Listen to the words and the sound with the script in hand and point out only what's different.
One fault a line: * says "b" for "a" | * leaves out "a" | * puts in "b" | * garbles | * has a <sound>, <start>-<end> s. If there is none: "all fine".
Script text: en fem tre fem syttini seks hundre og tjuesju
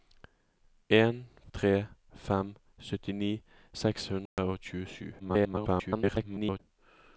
* leaves out "fem"
* has a dropout, 4.3-4.4 s
* garbles